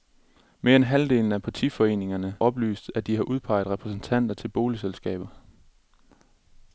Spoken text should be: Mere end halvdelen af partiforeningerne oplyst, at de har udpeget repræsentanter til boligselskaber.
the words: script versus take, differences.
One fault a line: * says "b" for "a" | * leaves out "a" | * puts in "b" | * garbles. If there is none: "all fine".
all fine